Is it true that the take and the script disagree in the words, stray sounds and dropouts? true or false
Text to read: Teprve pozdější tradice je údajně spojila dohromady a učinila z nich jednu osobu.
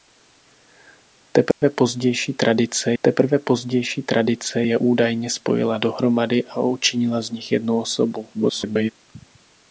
true